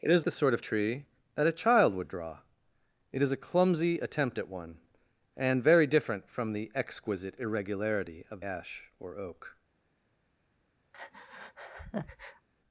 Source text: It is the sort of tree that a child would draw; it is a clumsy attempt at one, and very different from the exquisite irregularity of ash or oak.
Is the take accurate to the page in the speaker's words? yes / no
yes